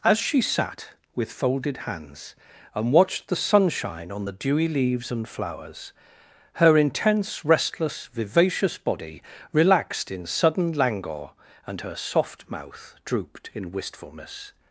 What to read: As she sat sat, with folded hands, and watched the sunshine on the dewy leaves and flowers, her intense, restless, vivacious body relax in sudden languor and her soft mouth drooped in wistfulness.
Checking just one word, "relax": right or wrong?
wrong